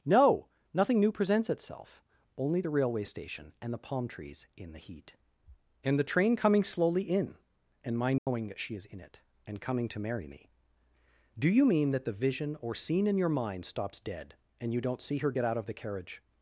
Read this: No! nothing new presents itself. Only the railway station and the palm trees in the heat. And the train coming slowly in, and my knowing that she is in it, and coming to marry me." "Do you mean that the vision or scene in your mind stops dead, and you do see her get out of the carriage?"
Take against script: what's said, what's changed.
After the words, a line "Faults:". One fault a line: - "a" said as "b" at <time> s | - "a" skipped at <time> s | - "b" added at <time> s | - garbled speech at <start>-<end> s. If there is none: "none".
No! nothing new presents itself. Only the railway station and the palm trees in the heat. And the train coming slowly in, and my knowing that she is in it, and coming to marry me." "Do you mean that the vision or scene in your mind stops dead, and you don't see her get out of the carriage?"
Faults:
- "do" said as "don't" at 14.8 s